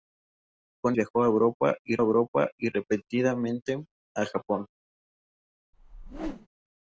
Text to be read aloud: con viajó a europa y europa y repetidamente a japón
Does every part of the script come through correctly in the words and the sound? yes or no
no